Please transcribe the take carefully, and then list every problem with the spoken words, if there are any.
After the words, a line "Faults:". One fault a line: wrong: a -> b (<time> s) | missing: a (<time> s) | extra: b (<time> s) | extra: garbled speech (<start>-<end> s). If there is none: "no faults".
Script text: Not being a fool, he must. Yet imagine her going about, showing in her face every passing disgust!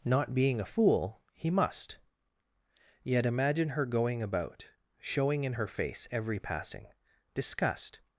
Not being a fool, he must. Yet imagine her going about, showing in her face every passing disgust!
Faults:
no faults